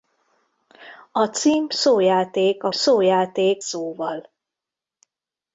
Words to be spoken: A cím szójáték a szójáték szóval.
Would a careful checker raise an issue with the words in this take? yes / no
no